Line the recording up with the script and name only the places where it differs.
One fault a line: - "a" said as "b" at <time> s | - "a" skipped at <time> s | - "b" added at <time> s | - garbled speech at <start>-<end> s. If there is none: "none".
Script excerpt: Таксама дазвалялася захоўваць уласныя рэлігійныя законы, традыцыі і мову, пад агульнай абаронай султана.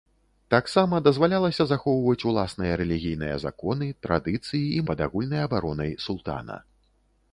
- "мову" skipped at 4.8 s